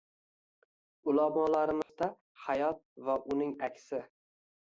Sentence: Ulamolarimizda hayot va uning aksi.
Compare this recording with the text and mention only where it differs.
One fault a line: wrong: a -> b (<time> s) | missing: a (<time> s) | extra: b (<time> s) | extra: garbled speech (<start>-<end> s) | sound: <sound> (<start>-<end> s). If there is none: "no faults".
sound: dropout (1.8-1.9 s)